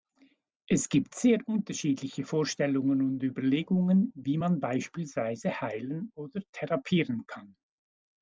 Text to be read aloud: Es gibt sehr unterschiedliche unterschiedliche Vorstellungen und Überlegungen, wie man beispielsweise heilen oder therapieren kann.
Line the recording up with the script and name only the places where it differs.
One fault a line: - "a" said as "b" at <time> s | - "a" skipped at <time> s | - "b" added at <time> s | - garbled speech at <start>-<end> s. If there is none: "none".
- "unterschiedliche" skipped at 2.2 s